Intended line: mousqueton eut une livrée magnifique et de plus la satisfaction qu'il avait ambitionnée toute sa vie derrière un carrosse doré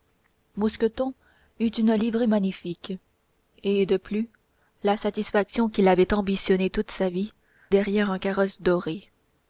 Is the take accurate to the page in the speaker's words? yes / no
yes